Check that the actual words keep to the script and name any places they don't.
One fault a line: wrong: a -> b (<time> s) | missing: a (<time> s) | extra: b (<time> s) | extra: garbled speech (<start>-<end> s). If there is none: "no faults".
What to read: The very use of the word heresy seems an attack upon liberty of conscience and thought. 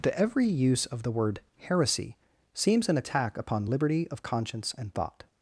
wrong: very -> every (0.2 s)